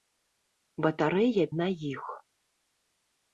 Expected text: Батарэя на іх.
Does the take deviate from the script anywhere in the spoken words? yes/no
no